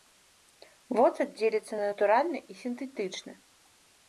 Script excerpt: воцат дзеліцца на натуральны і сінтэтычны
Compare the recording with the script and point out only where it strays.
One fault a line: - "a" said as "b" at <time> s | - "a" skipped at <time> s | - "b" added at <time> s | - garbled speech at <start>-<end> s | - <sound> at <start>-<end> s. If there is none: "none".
none